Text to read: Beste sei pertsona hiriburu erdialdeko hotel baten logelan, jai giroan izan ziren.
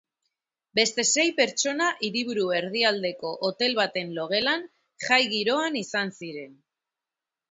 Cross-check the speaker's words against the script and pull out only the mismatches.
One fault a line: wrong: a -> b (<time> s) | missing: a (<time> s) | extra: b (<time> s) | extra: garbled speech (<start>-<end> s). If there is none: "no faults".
no faults